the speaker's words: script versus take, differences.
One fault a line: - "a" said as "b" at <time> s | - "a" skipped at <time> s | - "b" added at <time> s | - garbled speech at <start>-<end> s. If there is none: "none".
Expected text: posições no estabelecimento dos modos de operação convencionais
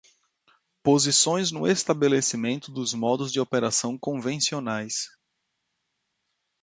none